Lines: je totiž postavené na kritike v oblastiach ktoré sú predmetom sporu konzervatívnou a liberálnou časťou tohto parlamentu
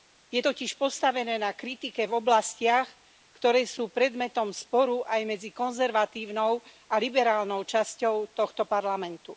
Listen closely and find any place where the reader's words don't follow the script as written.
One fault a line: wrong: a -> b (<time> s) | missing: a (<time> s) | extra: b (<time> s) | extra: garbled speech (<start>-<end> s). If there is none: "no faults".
extra: aj medzi (5.0 s)